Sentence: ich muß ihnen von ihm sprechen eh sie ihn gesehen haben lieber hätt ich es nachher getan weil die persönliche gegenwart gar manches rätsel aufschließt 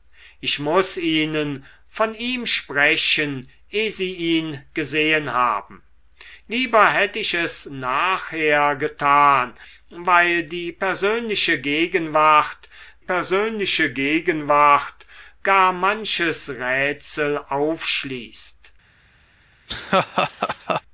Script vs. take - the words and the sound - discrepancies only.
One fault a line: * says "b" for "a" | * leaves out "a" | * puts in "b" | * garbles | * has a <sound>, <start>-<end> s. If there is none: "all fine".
* puts in "persönliche gegenwart"
* has a laugh, 19.7-20.8 s